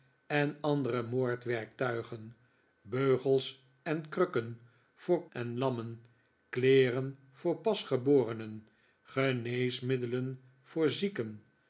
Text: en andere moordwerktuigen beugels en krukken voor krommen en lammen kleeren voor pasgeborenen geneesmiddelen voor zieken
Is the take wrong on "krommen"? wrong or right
wrong